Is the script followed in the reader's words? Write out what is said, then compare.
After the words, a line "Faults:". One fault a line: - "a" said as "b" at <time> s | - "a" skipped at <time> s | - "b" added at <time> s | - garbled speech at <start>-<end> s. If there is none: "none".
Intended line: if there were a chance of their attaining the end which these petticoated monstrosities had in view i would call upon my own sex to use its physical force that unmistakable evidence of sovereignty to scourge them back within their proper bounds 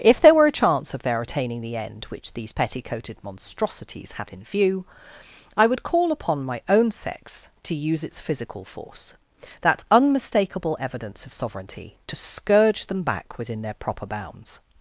if there were a chance of their attaining the end which these petticoated monstrosities had in view i would call upon my own sex to use its physical force that unmistakable evidence of sovereignty to scourge them back within their proper bounds
Faults:
none